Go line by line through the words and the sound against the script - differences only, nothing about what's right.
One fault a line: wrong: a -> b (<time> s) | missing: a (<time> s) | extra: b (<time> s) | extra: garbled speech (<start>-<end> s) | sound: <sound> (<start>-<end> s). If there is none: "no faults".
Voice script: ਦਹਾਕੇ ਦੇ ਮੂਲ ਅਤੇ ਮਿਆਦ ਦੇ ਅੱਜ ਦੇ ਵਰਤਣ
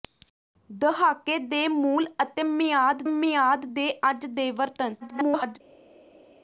extra: ਮਿਆਦ (3.1 s)
extra: garbled speech (5.0-5.6 s)